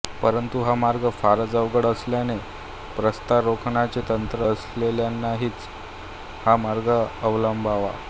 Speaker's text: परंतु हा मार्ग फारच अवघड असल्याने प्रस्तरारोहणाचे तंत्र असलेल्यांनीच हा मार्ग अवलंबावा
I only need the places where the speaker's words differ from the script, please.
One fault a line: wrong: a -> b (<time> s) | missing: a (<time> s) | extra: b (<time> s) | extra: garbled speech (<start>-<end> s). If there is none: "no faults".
no faults